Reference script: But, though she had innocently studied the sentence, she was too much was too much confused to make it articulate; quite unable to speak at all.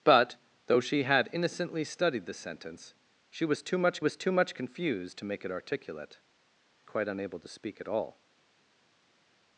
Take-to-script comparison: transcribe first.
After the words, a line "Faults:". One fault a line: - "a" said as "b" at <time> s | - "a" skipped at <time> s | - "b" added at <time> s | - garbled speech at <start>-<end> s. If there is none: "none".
But, though she had innocently studied the sentence, she was too much was too much confused to make it articulate; quite unable to speak at all.
Faults:
none